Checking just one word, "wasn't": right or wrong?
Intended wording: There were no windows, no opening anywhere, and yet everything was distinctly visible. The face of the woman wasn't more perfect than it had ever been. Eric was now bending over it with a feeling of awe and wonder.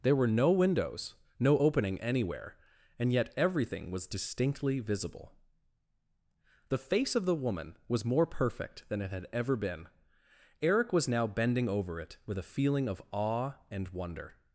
wrong